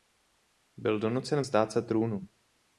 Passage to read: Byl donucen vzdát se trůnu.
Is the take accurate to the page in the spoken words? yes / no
yes